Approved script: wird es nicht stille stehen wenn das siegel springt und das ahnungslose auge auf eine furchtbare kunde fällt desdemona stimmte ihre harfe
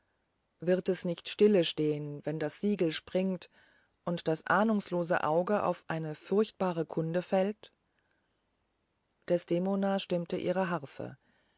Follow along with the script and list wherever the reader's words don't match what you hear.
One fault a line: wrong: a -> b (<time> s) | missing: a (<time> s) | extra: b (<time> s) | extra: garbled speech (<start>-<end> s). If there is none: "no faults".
no faults